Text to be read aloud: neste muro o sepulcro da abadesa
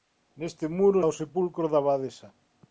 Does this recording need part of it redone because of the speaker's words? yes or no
no